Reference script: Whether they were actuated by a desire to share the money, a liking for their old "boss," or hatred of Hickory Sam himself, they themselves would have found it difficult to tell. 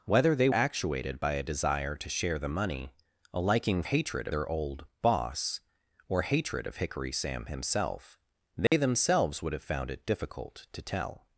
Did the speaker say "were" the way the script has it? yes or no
no